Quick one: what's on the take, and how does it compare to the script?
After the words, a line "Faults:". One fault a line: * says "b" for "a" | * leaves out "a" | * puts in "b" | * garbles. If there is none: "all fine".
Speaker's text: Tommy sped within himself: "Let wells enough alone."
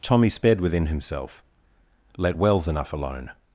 Tommy sped within himself: "Let wells enough alone."
Faults:
all fine